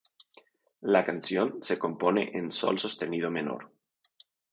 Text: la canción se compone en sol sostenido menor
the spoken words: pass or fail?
pass